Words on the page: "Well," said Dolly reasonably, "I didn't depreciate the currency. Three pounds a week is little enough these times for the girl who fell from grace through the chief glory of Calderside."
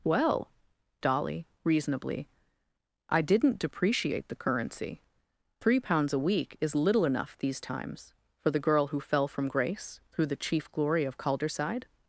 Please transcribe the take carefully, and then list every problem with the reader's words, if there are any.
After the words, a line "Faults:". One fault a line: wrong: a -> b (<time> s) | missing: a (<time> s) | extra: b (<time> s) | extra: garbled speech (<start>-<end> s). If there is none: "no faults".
"Well," Dolly reasonably, "I didn't depreciate the currency. Three pounds a week is little enough these times for the girl who fell from grace through the chief glory of Calderside."
Faults:
missing: said (0.5 s)